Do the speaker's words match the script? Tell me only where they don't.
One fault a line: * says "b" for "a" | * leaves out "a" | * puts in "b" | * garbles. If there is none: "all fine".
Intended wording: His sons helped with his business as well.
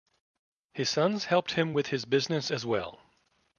* puts in "him"